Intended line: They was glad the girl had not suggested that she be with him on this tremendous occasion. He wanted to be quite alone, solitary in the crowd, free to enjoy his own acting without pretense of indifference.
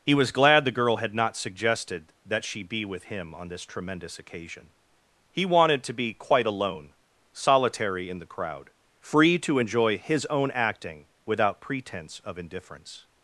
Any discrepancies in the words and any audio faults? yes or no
yes